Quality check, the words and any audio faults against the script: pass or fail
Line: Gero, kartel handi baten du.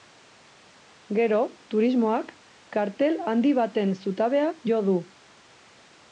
fail